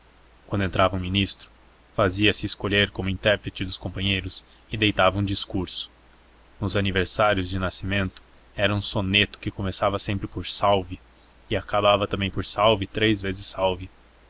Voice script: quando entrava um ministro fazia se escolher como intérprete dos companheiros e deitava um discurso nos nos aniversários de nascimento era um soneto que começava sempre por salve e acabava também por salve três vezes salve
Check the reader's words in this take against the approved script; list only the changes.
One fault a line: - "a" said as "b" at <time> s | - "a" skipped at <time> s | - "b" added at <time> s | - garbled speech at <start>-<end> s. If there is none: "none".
- "nos" skipped at 6.8 s